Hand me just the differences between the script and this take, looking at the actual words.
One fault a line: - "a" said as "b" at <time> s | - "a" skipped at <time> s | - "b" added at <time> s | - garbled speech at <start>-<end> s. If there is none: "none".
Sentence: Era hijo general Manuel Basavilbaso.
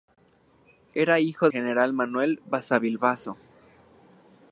none